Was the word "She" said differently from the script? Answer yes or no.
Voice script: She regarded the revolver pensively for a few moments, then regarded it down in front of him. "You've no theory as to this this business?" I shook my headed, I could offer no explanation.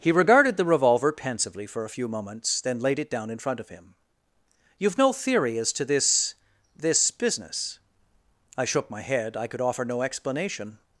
yes